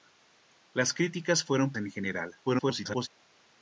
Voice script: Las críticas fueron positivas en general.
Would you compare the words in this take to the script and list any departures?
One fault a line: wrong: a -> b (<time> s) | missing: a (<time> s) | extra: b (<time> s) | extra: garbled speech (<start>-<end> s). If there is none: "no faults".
missing: positivas (1.7 s)
extra: garbled speech (2.4-3.1 s)